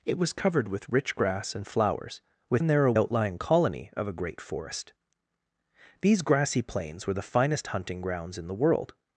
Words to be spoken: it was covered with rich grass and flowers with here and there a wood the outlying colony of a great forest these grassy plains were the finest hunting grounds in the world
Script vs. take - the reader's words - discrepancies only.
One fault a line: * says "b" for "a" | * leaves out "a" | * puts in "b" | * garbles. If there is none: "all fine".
* leaves out "here"
* leaves out "wood the"